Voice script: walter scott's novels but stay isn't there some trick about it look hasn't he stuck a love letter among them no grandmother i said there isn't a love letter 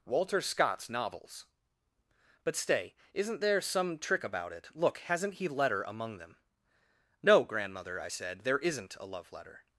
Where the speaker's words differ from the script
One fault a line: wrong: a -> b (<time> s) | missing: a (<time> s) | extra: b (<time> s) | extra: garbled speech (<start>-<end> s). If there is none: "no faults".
missing: stuck a love (5.5 s)